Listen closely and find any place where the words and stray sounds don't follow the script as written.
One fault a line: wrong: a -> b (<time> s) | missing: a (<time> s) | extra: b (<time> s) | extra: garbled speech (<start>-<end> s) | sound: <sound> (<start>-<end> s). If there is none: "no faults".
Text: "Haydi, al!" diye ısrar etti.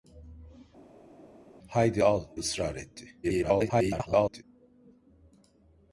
missing: diye (2.3 s)
extra: garbled speech (3.2-4.4 s)